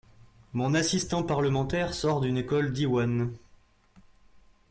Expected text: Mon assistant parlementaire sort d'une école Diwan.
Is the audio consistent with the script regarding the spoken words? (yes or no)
yes